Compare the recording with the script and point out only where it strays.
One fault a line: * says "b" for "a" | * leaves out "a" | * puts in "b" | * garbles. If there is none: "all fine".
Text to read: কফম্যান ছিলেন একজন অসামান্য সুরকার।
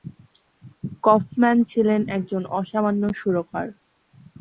all fine